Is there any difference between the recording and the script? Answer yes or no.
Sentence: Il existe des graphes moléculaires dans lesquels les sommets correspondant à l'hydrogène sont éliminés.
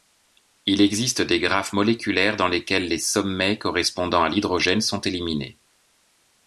no